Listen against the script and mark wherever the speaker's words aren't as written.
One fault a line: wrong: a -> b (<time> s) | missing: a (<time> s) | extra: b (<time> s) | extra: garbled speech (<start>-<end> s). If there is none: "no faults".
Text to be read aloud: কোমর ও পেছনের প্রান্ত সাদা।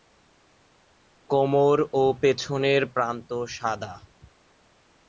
no faults